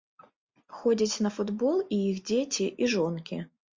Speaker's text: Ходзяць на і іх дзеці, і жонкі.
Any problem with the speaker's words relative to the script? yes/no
yes